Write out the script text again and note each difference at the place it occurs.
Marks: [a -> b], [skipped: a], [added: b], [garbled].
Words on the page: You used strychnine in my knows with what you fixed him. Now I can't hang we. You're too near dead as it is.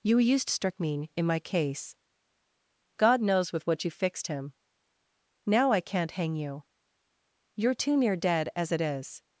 You used strychnine in my [added: case God] knows with what you fixed him. Now I can't hang [we. -> you] You're too near dead as it is.